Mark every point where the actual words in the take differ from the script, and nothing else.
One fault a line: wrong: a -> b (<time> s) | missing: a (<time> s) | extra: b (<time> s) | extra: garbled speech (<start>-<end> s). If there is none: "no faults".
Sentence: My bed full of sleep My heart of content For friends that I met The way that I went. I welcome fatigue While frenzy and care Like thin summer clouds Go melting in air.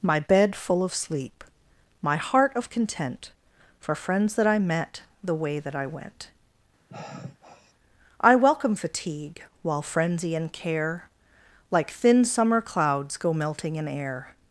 no faults